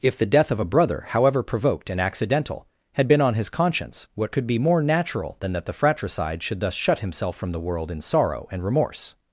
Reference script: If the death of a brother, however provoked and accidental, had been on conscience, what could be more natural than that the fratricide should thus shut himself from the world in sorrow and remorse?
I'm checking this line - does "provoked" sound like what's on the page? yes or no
yes